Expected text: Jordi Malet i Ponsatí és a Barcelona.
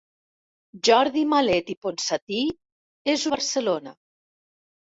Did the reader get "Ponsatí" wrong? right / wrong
right